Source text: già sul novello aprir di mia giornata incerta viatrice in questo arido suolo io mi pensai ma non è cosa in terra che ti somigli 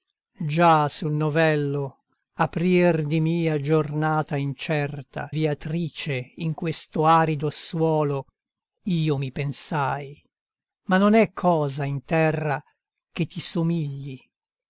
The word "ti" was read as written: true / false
true